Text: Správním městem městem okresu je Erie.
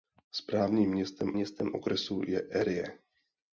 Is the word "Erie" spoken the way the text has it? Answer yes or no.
yes